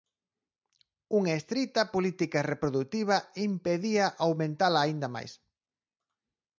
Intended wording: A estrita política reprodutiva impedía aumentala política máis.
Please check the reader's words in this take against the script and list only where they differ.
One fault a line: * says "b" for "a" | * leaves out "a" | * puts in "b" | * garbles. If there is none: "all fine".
* says "Unha" for "A"
* says "aínda" for "política"